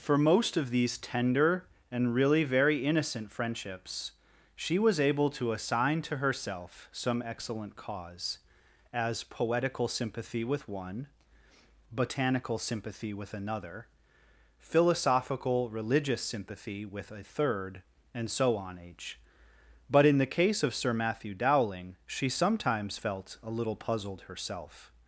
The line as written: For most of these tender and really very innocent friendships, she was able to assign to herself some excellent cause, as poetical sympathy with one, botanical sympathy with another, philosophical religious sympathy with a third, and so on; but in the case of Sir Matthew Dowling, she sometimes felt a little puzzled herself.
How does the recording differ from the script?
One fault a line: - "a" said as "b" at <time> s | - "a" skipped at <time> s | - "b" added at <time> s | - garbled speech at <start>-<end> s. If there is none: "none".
- "h" added at 18.8 s